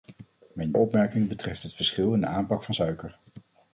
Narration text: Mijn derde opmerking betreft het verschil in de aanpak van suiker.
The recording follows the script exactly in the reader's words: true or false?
false